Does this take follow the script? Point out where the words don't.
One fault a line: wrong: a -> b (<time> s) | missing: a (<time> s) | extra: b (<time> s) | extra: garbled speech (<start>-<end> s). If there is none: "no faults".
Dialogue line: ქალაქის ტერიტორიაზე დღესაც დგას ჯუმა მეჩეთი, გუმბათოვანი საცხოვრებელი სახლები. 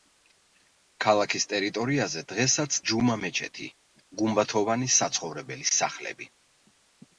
missing: დგას (2.8 s)